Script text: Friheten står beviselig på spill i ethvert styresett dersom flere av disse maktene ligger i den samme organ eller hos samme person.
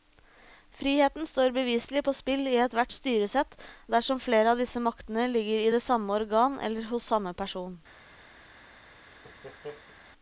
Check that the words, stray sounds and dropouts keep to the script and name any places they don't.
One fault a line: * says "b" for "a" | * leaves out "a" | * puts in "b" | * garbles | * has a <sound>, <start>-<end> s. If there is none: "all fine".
* says "det" for "den"
* has a laugh, 9.0-10.0 s